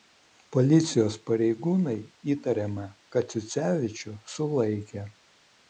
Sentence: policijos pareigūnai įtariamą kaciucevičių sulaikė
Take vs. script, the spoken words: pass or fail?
pass